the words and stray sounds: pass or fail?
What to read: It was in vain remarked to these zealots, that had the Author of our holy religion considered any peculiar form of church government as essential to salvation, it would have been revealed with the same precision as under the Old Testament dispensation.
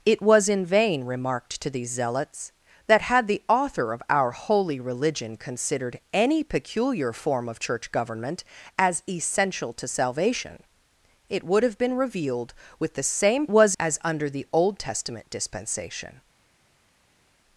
fail